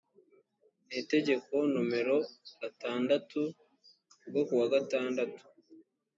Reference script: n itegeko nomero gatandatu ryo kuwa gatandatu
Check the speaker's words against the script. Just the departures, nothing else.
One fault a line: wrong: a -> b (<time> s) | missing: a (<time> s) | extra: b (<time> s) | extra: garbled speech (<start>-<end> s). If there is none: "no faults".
no faults